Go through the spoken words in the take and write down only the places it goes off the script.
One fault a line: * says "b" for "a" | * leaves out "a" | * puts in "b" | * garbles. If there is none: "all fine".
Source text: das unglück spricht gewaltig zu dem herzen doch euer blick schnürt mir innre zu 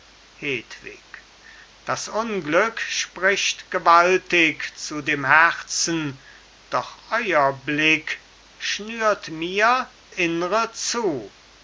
all fine